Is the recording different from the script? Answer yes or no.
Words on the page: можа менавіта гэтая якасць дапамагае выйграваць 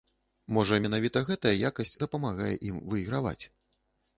yes